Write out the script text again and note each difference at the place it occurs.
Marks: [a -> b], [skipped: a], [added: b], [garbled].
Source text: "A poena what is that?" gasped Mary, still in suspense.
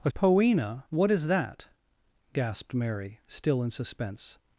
"A poena what is that?" gasped Mary, still in suspense.